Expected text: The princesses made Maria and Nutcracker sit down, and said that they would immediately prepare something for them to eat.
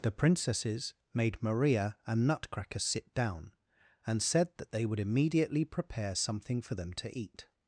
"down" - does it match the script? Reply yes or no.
yes